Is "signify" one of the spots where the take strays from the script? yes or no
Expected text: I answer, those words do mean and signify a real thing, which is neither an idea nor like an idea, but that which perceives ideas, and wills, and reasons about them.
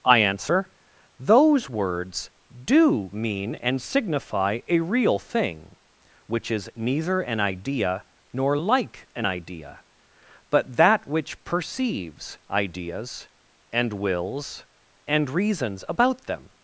no